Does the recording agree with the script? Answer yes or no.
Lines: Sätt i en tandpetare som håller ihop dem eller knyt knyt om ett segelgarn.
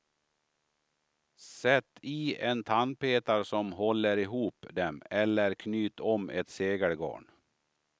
no